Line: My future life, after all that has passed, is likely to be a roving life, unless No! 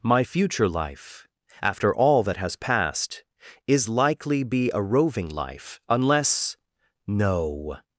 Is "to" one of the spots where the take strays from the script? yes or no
yes